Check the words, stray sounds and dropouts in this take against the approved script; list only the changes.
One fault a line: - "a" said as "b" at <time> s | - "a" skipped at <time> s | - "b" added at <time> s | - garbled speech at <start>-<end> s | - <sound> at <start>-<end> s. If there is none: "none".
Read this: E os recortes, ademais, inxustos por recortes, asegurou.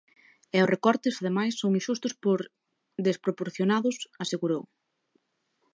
- "son" added at 1.6 s
- "recortes" said as "desproporcionados" at 3.1 s